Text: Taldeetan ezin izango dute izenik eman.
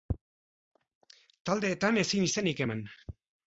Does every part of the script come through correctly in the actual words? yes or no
no